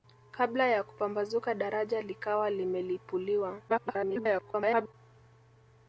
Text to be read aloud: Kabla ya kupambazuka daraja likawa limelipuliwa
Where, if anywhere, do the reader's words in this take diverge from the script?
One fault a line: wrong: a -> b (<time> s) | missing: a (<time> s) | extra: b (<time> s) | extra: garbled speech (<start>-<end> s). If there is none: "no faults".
extra: garbled speech (3.7-4.9 s)